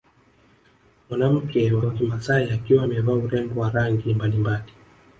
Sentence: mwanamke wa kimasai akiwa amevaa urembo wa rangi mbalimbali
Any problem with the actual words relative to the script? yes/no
yes